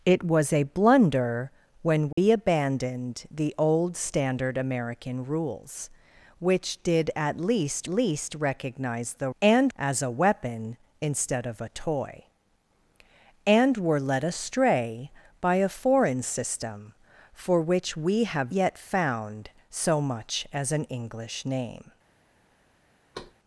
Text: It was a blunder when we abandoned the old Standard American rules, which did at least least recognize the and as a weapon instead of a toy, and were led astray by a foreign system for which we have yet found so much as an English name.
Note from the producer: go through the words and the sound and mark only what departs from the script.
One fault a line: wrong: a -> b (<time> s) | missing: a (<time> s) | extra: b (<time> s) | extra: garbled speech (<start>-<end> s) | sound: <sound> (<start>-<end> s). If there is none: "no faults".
sound: dropout (2.1-2.2 s)
sound: thud (23.1-23.3 s)